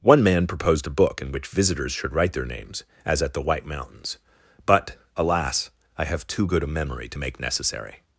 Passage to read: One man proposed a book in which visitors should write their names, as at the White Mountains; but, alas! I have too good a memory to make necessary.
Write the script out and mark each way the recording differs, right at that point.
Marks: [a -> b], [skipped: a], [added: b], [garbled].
One man proposed a book in which visitors should write their names, as at the White Mountains; but, alas! I have too good a memory to make necessary.